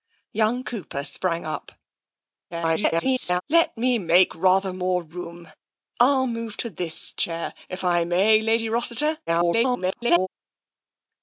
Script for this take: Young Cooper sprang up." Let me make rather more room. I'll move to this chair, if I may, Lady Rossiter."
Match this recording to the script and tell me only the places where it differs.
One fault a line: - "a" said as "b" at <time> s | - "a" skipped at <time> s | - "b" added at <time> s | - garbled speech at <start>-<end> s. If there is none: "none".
- garbled speech at 2.5-3.4 s
- garbled speech at 9.3-10.3 s